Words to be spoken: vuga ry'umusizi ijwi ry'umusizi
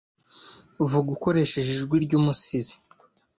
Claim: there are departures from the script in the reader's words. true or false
true